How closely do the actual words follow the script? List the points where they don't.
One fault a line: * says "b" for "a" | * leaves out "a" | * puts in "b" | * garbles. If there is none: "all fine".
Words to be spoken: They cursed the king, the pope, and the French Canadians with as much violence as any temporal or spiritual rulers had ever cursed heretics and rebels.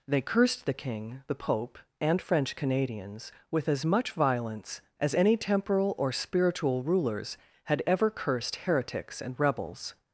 * leaves out "the"